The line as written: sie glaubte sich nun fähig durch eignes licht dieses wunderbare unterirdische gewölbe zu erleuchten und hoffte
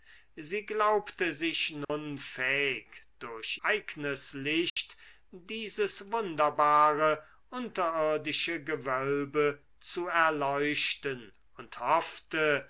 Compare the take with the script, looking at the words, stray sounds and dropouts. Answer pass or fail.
fail